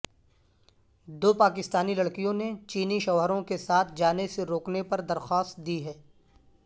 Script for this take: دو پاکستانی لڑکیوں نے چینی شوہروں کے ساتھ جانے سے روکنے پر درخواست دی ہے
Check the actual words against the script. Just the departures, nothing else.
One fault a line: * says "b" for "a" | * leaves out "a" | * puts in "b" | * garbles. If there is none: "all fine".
all fine